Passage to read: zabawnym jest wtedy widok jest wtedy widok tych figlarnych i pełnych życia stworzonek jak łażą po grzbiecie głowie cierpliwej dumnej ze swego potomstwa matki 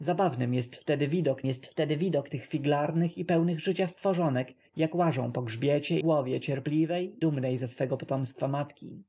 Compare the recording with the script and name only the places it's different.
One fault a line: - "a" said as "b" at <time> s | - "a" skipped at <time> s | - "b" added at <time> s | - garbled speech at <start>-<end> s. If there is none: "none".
none